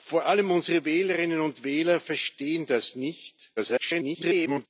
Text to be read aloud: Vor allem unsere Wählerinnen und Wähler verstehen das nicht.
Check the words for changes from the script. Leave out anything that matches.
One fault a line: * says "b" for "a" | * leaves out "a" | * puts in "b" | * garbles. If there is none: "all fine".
* garbles